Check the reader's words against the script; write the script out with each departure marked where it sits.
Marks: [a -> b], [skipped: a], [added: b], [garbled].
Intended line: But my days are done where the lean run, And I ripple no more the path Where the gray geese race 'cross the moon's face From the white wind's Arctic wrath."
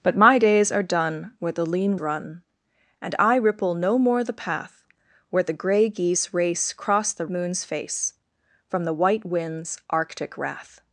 But my days are done where the lean run, And I ripple no more the path Where the gray geese race 'cross the moon's face From the white wind's Arctic wrath."